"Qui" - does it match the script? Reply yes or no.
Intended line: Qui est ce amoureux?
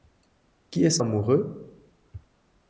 yes